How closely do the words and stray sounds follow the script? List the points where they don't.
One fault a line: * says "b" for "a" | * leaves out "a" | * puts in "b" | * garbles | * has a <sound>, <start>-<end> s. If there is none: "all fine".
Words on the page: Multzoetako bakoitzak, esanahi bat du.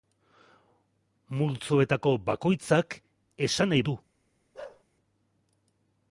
* leaves out "bat"
* has a bark, 4.5-4.8 s